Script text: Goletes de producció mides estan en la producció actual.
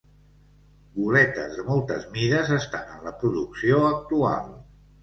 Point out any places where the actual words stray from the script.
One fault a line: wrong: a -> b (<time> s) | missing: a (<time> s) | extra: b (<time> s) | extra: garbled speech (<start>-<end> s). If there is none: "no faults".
wrong: producció -> moltes (1.7 s)